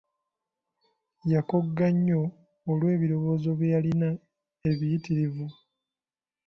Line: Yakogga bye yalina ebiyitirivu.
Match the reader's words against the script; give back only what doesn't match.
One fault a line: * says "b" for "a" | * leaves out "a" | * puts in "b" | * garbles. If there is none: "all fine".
* puts in "nnyo olw'ebirowoozo"